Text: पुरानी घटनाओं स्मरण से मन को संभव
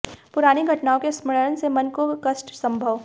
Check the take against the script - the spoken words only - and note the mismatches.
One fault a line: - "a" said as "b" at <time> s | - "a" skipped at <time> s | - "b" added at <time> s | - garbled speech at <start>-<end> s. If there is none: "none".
- "के" added at 1.0 s
- "कष्ट" added at 2.3 s